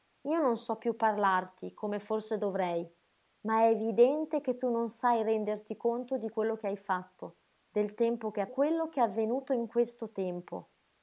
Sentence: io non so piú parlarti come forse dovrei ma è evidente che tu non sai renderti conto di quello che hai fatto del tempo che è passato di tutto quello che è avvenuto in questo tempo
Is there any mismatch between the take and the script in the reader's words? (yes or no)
yes